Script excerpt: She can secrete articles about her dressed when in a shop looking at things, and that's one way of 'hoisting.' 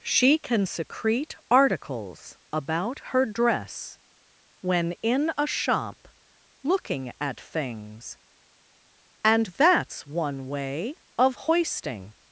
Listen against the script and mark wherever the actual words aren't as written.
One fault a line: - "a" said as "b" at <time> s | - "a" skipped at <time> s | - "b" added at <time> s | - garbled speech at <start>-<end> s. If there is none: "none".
- "dressed" said as "dress" at 3.3 s